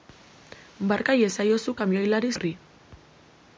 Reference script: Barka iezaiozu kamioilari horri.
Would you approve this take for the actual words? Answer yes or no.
yes